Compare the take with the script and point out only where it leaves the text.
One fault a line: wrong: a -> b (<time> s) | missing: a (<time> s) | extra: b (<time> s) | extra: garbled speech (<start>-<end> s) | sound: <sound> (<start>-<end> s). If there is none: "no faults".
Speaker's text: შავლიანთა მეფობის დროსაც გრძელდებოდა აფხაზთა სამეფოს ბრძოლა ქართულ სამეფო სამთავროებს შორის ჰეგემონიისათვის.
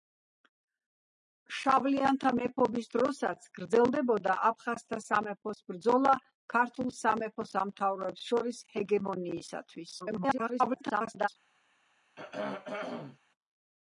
extra: garbled speech (10.0-11.3 s)
sound: throat clearing (12.2-13.2 s)